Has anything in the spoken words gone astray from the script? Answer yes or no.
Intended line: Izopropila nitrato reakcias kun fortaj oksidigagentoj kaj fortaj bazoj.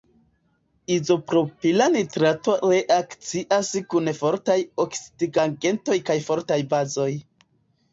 no